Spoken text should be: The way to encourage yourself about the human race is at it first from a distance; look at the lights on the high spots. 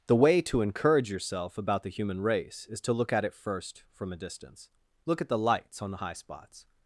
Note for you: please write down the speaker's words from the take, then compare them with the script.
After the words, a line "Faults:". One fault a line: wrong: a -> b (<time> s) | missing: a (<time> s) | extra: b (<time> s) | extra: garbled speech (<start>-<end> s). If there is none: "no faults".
The way to encourage yourself about the human race is to look at it first from a distance; look at the lights on the high spots.
Faults:
extra: to look (2.8 s)